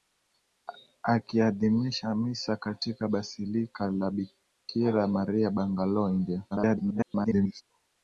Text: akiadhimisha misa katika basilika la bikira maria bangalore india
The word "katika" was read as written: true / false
true